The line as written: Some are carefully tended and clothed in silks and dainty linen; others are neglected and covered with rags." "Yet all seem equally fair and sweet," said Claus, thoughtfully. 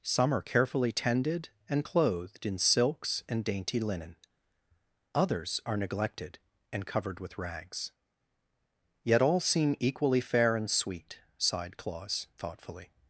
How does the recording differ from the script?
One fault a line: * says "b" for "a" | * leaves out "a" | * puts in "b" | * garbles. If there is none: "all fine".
* says "sighed" for "said"